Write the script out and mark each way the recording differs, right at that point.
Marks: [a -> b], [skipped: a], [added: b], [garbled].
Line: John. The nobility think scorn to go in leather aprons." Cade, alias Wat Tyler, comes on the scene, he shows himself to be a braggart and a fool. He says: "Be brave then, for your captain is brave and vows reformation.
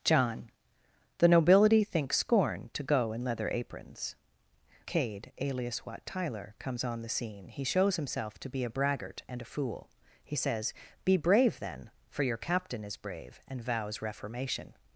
John. The nobility think scorn to go in leather aprons." Cade, alias Wat Tyler, comes on the scene, he shows himself to be a braggart and a fool. He says: "Be brave then, for your captain is brave and vows reformation.